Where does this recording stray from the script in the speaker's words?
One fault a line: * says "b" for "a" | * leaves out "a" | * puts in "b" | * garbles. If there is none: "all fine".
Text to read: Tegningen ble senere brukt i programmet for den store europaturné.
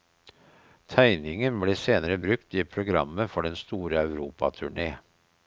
all fine